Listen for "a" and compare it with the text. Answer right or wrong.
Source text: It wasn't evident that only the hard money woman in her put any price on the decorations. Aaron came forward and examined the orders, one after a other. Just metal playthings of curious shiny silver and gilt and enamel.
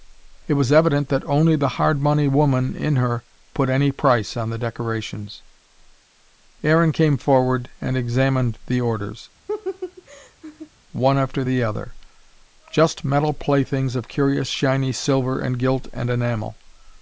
wrong